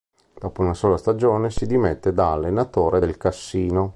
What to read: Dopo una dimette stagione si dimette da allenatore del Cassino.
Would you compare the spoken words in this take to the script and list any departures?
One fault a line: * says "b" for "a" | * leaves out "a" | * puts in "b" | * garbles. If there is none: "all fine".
* says "sola" for "dimette"